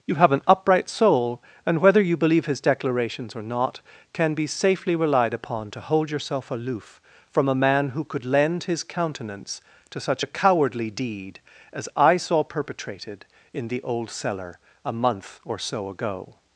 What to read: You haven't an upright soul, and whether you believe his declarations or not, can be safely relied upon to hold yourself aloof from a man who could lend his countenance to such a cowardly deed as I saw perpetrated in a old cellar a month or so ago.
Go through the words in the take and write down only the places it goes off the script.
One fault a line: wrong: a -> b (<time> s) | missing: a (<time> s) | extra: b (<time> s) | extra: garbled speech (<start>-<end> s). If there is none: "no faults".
wrong: haven't -> have (0.1 s)
wrong: a -> the (13.7 s)